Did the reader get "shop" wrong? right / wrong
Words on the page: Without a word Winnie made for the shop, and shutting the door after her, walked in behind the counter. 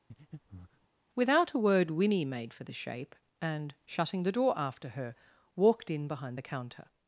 wrong